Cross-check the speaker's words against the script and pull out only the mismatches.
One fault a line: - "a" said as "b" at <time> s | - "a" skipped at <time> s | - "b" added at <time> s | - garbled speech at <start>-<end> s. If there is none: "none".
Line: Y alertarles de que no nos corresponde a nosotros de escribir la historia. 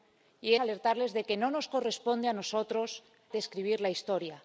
none